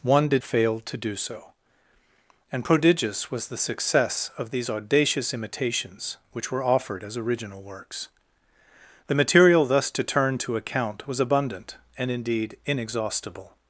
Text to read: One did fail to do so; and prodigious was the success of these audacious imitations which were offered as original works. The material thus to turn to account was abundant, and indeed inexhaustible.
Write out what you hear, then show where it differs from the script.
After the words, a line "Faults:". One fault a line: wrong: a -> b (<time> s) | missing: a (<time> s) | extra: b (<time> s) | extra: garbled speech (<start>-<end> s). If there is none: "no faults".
One did fail to do so; and prodigious was the success of these audacious imitations which were offered as original works. The material thus to turn to account was abundant, and indeed inexhaustible.
Faults:
no faults